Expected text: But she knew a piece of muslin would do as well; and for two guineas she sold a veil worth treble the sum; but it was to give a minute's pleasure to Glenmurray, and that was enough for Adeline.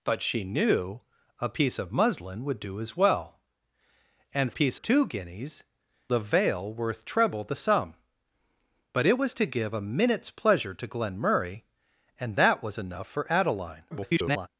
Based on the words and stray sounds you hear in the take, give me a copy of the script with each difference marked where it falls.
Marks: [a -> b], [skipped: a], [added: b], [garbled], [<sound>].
But she knew a piece of muslin would do as well; and [for -> piece] two guineas [skipped: she sold] a veil worth treble the sum; but it was to give a minute's pleasure to Glenmurray, and that was enough for Adeline. [garbled]